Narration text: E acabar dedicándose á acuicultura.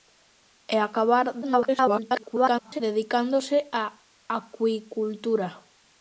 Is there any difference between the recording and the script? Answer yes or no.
yes